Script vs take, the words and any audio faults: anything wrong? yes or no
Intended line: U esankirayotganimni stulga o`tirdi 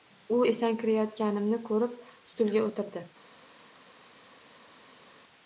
yes